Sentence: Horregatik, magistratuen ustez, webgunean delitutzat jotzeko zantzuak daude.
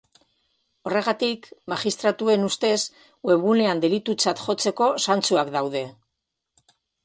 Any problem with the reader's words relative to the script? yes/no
no